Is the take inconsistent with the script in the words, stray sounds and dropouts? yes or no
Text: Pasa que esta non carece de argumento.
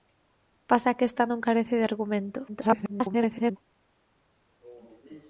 yes